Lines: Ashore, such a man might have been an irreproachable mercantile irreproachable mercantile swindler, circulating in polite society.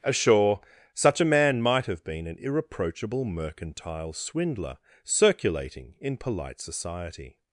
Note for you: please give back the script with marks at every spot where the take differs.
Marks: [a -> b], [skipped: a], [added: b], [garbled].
Ashore, such a man might have been an irreproachable mercantile [skipped: irreproachable mercantile] swindler, circulating in polite society.